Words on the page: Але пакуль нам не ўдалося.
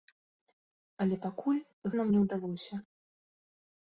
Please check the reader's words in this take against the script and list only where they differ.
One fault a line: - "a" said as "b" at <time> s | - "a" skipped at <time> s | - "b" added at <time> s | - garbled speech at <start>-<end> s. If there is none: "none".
none